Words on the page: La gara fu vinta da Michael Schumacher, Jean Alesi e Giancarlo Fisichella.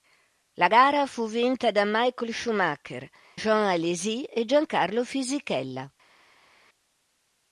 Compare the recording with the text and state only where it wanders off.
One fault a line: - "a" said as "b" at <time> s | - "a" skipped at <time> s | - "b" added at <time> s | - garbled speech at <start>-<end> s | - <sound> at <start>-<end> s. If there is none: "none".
none